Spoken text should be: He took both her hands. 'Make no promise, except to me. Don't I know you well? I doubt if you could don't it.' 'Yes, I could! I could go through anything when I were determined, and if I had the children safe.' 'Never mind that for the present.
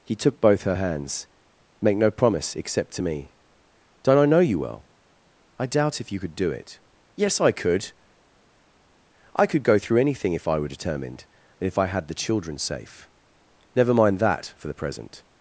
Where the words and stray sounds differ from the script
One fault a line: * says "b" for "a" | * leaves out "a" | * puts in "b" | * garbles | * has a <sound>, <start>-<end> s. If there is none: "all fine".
* says "do" for "don't"
* says "if" for "when"